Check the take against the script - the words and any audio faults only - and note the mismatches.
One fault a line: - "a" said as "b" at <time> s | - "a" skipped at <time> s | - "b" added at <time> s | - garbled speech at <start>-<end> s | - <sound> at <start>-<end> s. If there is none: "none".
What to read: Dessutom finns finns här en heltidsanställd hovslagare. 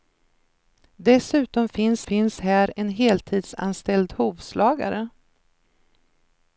none